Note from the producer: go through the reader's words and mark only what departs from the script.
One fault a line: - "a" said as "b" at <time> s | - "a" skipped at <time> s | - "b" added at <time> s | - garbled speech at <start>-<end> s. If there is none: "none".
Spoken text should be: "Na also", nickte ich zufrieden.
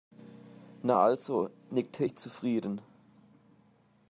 none